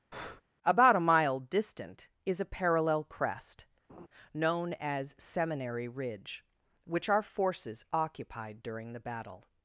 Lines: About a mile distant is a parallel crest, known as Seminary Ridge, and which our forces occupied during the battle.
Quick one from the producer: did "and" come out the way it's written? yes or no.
no